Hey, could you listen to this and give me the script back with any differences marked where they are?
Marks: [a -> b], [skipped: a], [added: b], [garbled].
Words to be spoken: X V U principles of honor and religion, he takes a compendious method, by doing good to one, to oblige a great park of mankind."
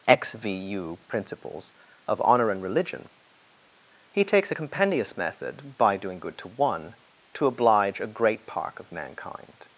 X V U principles of honor and religion, he takes a compendious method, by doing good to one, to oblige a great park of mankind."